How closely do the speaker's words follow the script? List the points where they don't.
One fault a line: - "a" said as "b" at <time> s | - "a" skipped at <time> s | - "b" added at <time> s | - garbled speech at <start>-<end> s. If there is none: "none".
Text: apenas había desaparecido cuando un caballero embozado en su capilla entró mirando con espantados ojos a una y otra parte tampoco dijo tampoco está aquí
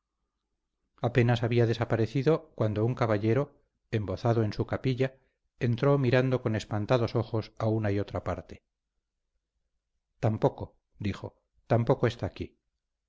none